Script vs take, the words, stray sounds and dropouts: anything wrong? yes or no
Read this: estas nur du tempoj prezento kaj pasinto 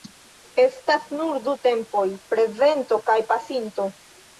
no